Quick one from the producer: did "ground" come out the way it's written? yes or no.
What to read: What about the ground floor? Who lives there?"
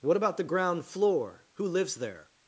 yes